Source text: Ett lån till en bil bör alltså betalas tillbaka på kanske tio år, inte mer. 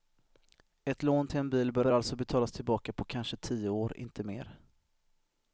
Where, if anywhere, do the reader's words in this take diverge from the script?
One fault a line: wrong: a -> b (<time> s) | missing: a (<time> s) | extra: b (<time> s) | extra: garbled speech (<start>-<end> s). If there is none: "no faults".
extra: bör (1.8 s)